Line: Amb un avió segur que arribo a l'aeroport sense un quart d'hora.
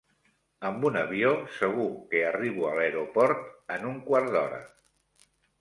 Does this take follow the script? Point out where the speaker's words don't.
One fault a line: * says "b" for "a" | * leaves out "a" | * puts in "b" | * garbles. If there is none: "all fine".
* says "en" for "sense"